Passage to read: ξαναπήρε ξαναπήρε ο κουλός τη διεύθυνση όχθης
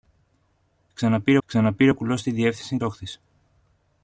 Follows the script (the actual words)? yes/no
yes